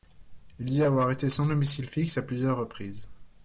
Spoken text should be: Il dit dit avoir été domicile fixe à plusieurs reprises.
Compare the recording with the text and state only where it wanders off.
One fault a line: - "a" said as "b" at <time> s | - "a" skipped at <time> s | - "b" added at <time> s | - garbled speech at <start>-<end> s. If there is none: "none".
- "dit" skipped at 0.8 s
- "sans" added at 1.3 s